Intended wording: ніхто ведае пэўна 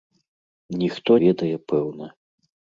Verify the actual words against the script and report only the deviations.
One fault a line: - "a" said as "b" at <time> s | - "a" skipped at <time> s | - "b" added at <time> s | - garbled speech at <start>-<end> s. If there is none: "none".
none